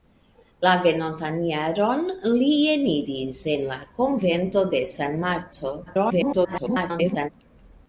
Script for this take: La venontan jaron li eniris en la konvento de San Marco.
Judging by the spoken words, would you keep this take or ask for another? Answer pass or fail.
fail